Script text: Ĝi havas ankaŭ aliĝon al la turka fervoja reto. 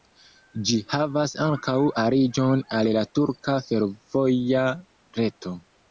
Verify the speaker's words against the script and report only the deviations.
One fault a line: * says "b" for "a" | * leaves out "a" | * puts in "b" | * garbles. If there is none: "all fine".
all fine